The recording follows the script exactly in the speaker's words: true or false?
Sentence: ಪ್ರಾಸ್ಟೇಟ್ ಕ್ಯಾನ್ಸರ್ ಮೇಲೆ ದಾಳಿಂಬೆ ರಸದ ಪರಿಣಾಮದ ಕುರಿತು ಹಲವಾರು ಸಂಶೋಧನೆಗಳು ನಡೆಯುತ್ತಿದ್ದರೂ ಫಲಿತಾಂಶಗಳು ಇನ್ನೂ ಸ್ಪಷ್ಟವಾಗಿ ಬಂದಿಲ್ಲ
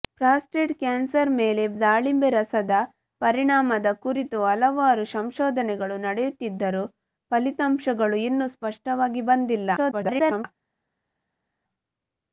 false